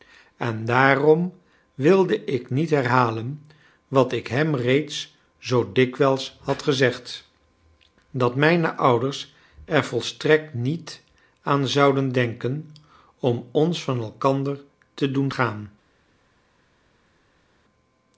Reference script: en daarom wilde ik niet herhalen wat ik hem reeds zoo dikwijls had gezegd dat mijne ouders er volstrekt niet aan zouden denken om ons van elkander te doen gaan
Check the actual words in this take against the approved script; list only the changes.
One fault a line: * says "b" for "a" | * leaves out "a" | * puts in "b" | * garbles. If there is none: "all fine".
all fine